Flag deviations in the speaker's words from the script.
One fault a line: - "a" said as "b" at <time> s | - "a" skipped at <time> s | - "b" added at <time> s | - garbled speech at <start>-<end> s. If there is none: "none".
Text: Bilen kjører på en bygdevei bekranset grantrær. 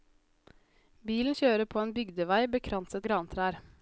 none